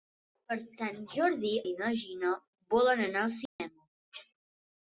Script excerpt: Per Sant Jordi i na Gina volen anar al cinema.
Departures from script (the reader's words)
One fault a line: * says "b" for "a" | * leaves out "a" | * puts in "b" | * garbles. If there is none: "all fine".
all fine